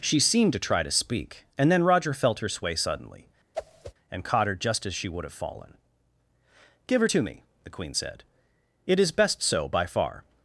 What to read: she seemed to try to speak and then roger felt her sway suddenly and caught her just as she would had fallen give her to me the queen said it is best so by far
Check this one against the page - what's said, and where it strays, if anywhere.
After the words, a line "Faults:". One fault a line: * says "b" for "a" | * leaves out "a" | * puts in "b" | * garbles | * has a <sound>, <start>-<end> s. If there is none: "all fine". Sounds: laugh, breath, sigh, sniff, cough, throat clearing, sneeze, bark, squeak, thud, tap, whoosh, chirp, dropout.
she seemed to try to speak and then roger felt her sway suddenly and caught her just as she would have fallen give her to me the queen said it is best so by far
Faults:
* has a whoosh, 3.5-3.9 s
* says "have" for "had"